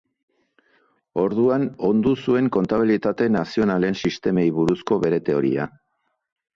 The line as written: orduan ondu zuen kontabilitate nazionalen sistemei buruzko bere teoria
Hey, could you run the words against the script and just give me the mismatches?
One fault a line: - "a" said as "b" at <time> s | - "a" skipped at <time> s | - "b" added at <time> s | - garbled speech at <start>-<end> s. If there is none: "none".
none